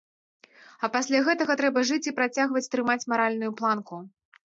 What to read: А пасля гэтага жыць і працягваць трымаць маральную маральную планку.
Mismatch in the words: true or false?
true